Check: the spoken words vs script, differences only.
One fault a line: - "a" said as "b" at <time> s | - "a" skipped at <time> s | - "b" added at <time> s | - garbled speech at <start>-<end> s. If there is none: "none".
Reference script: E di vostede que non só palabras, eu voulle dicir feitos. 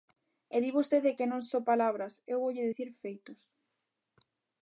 none